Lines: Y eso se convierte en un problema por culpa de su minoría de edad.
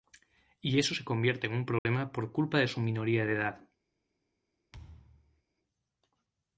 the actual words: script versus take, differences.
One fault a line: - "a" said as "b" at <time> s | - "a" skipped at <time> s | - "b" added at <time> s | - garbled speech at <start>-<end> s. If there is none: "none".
none